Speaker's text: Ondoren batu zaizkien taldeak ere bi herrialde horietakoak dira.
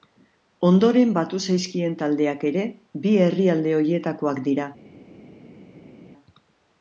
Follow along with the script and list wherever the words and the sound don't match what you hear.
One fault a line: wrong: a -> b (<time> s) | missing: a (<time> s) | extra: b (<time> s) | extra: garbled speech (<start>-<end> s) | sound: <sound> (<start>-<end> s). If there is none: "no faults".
no faults